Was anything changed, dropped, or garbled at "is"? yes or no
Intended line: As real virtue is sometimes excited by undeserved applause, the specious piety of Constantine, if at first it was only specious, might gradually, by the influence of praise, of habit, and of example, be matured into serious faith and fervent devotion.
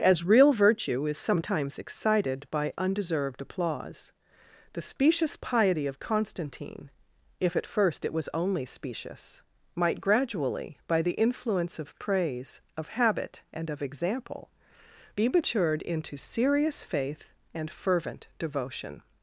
no